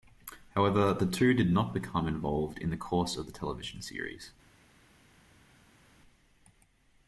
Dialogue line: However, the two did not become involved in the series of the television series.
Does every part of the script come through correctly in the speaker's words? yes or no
no